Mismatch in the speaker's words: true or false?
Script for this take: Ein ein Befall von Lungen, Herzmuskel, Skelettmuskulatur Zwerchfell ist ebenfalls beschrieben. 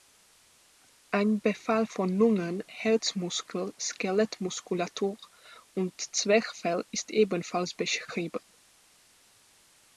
true